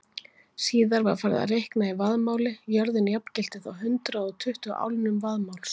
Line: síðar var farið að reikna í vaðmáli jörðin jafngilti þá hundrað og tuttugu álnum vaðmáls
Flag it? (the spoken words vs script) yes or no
no